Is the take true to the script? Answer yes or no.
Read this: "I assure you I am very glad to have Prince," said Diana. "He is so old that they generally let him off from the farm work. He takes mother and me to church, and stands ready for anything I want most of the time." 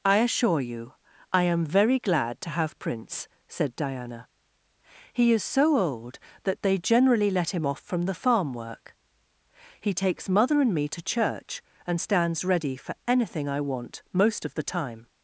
yes